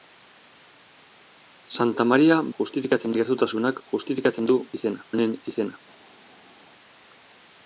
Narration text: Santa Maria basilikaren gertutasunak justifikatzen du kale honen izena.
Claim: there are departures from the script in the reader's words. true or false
true